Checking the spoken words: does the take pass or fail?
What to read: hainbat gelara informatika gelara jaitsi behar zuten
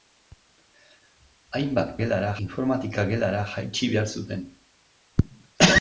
pass